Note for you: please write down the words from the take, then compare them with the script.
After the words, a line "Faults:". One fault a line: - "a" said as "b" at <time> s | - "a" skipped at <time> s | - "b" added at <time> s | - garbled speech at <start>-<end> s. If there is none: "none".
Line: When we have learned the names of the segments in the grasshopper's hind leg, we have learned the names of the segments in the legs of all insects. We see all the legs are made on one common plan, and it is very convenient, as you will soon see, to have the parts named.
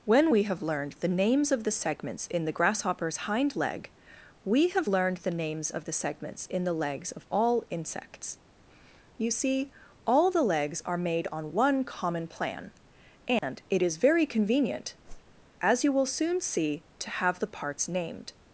When we have learned the names of the segments in the grasshopper's hind leg, we have learned the names of the segments in the legs of all insects. You see all the legs are made on one common plan, and it is very convenient, as you will soon see, to have the parts named.
Faults:
- "We" said as "You" at 9.2 s